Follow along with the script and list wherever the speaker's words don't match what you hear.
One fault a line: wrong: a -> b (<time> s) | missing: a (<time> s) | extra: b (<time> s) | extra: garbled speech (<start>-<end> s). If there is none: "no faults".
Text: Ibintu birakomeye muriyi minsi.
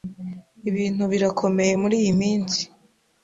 no faults